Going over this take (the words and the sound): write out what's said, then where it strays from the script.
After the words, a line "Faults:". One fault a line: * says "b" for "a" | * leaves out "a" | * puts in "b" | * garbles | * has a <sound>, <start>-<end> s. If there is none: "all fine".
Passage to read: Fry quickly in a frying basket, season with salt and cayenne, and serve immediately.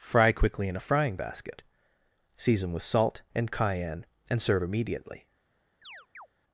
Fry quickly in a frying basket, season with salt and cayenne, and serve immediately.
Faults:
* has a chirp, 5.8-6.3 s